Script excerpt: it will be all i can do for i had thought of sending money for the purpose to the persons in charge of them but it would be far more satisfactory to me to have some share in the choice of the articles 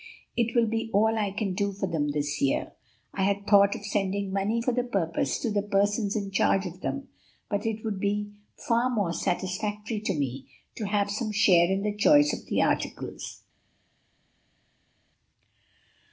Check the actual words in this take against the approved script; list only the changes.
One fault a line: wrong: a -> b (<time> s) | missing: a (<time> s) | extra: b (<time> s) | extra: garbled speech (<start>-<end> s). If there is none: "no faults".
extra: them this year (1.9 s)